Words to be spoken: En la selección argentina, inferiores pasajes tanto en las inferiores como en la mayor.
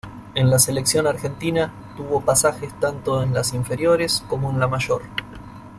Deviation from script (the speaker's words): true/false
true